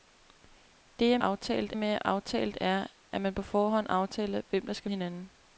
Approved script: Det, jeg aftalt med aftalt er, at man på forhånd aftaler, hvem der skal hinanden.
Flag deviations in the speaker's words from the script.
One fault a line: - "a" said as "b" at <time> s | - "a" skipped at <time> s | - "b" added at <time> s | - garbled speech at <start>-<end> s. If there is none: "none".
none